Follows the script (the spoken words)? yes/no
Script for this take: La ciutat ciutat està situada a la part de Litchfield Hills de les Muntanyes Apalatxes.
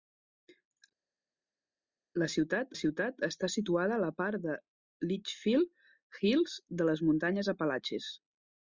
yes